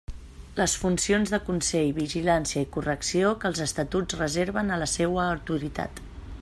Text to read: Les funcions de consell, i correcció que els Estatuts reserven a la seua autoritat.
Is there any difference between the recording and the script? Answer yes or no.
yes